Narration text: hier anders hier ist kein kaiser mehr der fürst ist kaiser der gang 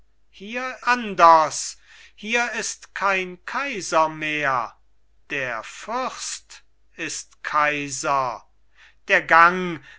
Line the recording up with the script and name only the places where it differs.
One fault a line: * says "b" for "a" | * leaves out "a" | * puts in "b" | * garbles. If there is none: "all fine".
all fine